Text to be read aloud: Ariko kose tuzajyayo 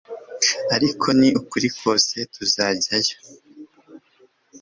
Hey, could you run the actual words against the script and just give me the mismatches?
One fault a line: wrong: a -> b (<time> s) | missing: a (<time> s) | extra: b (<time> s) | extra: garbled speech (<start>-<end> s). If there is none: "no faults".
extra: ni ukuri (1.2 s)